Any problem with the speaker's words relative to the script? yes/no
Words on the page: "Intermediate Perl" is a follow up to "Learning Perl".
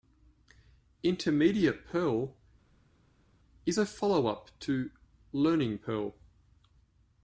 no